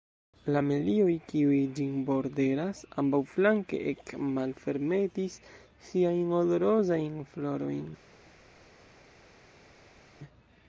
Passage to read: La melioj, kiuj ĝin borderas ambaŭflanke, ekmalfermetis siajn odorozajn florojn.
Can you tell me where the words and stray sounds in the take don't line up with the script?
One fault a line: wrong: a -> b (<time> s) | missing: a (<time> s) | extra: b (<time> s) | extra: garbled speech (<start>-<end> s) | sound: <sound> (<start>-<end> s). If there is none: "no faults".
no faults